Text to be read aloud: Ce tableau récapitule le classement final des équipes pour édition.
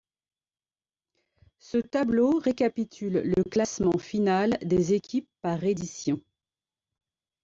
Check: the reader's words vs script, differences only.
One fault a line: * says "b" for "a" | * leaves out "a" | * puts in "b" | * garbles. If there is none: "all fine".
* says "par" for "pour"